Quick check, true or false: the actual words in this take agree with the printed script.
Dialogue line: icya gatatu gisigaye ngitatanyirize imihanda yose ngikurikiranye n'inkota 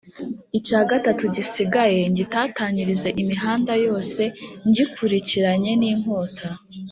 true